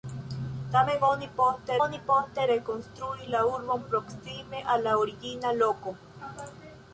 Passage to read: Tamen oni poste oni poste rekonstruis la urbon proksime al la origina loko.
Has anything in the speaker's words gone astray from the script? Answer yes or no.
no